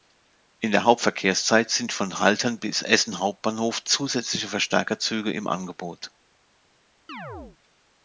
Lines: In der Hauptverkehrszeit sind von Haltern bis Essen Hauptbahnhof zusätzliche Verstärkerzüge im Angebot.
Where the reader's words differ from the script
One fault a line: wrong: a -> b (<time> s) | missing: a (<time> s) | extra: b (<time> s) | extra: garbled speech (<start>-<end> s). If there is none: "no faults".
no faults